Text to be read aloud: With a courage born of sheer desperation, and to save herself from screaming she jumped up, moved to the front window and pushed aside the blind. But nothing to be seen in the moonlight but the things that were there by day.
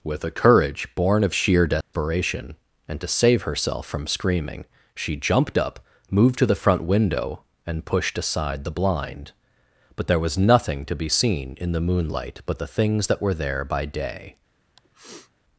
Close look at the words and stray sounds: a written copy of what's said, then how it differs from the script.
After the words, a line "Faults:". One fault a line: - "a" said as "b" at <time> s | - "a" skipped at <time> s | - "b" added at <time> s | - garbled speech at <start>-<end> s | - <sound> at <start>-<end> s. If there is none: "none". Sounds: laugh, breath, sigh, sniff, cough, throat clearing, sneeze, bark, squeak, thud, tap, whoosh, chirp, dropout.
With a courage born of sheer desperation, and to save herself from screaming she jumped up, moved to the front window and pushed aside the blind. But there was nothing to be seen in the moonlight but the things that were there by day.
Faults:
- dropout at 1.8-1.9 s
- "there was" added at 10.1 s
- sniff at 14.8-15.3 s